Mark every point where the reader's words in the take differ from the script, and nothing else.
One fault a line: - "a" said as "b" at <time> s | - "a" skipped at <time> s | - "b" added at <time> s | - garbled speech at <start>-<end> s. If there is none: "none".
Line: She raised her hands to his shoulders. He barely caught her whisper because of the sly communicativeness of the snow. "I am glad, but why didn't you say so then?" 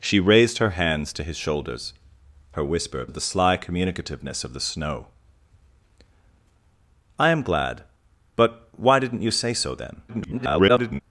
- "He barely caught" skipped at 1.9 s
- "because" skipped at 3.1 s
- garbled speech at 10.1-11.0 s